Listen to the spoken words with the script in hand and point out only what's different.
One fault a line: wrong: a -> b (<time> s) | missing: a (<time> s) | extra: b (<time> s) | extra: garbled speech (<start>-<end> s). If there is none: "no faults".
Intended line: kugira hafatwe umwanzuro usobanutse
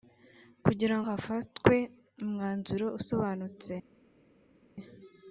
no faults